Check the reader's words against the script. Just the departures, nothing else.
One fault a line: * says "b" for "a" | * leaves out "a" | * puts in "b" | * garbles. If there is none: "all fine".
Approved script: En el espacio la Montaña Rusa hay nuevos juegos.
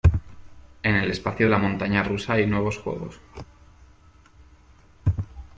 all fine